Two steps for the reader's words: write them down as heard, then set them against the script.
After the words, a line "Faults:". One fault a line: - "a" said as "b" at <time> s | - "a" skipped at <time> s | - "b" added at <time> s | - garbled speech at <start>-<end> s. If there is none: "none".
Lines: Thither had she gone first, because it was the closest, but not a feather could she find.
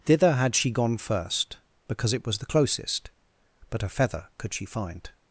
Thither had she gone first, because it was the closest, but a feather could she find.
Faults:
- "not" skipped at 3.8 s